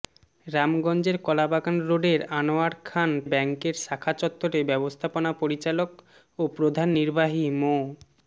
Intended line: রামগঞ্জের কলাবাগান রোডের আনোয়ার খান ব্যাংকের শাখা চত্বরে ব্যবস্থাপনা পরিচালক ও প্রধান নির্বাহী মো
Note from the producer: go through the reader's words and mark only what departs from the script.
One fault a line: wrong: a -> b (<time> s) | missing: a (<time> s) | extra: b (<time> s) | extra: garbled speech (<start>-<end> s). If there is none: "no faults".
no faults